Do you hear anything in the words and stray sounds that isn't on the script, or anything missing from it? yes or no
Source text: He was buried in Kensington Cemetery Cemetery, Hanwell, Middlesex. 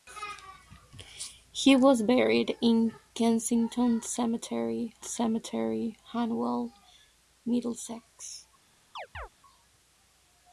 yes